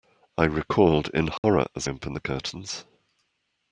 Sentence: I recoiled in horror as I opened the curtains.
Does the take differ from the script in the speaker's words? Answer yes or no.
yes